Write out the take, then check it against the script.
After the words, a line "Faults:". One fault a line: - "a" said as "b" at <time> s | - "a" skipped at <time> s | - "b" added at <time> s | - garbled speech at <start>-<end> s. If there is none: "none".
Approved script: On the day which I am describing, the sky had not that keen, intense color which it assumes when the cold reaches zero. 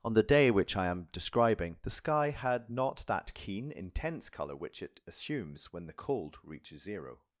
On the day which I am describing, the sky had not that keen, intense color which it assumes when the cold reaches zero.
Faults:
none